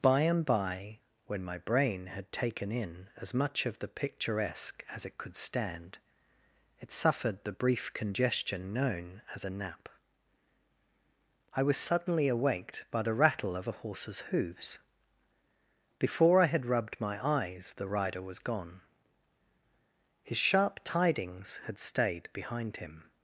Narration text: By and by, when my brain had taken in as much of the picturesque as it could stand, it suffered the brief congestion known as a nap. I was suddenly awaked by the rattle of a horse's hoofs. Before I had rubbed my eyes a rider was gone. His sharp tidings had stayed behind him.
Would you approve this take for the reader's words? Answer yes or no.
no